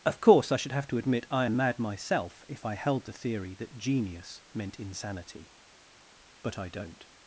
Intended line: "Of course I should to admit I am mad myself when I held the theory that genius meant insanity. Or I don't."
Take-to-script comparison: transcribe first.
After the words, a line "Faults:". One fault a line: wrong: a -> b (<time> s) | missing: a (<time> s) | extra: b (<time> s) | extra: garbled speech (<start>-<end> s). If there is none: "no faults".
"Of course I should have to admit I am mad myself if I held the theory that genius meant insanity. But I don't."
Faults:
extra: have (0.7 s)
wrong: when -> if (2.5 s)
wrong: Or -> But (6.4 s)